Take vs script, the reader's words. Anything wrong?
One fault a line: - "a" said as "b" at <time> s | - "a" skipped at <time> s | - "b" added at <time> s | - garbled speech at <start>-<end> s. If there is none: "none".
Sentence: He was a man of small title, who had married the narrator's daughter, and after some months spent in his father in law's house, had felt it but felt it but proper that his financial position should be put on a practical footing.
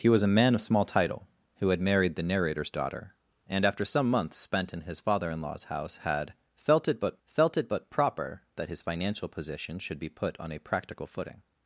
none